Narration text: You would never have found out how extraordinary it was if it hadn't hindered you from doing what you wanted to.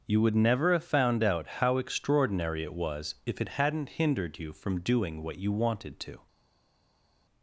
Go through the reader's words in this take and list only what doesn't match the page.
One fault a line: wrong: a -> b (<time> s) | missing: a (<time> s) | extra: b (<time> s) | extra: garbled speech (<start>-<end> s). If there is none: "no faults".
no faults